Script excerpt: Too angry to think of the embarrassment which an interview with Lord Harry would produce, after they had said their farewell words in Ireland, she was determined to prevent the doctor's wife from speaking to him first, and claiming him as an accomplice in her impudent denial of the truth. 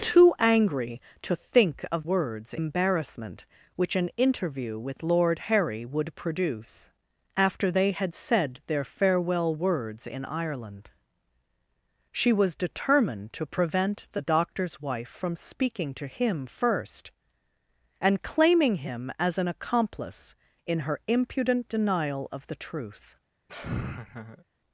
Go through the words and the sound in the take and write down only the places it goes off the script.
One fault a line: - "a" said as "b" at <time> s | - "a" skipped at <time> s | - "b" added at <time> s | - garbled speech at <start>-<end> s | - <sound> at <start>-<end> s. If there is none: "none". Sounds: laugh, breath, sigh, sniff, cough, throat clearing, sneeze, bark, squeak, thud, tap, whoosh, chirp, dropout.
- "the" said as "words" at 2.0 s
- laugh at 23.5-24.4 s